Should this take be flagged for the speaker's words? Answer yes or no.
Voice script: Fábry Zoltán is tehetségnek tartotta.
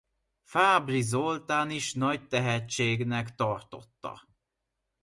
yes